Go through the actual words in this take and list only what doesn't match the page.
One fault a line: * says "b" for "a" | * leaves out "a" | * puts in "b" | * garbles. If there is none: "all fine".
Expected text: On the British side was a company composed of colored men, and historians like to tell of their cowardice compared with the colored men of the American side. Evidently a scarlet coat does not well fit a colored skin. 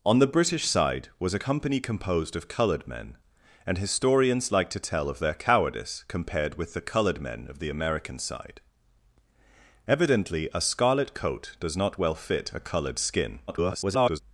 * garbles